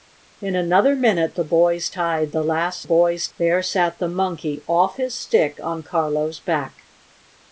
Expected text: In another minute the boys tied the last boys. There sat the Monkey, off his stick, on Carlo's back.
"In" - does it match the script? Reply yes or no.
yes